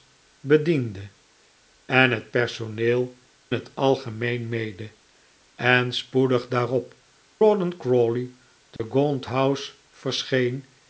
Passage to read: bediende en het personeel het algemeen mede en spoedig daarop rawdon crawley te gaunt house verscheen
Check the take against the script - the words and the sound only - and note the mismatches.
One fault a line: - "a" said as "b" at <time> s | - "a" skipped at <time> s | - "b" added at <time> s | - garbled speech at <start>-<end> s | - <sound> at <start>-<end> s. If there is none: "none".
- dropout at 8.8-8.8 s